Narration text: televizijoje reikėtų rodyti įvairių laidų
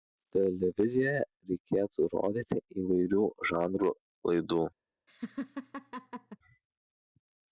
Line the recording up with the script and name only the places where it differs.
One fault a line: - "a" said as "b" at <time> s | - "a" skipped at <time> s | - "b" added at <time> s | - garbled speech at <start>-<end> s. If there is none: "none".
- "žanrų" added at 3.5 s